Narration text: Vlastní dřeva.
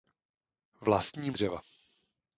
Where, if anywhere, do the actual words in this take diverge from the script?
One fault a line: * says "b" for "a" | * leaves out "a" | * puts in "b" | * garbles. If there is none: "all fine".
all fine